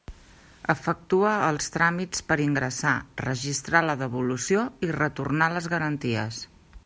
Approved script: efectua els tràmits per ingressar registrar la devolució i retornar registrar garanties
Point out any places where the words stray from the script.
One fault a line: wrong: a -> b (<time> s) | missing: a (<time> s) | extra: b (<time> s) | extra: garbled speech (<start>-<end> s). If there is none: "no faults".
wrong: registrar -> les (5.6 s)